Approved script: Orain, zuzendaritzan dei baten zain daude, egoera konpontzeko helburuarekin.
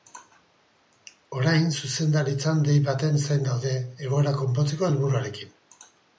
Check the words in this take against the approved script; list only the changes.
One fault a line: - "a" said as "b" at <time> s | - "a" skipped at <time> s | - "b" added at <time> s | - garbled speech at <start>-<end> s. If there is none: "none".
none